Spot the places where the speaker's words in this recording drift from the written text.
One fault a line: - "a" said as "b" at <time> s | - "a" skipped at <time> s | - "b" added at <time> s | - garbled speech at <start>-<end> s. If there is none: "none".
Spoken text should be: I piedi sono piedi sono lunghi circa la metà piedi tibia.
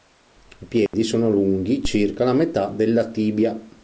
- "piedi sono" skipped at 1.3 s
- "piedi" said as "della" at 2.7 s